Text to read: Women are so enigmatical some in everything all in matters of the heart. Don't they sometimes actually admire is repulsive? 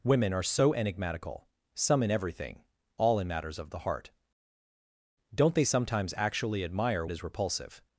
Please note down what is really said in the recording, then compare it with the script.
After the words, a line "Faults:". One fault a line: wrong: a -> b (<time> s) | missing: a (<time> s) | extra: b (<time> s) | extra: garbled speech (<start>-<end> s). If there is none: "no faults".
Women are so enigmatical some in everything all in matters of the heart. Don't they sometimes actually admire is repulsive?
Faults:
no faults